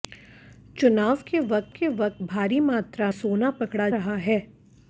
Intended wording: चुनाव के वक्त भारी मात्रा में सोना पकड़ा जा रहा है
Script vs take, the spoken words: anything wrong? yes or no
yes